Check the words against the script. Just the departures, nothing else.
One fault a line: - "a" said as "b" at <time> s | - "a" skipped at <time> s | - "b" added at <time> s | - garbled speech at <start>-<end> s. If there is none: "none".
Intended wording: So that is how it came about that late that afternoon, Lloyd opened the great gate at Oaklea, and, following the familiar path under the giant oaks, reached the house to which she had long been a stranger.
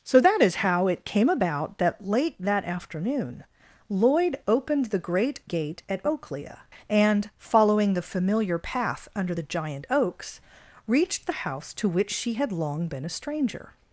none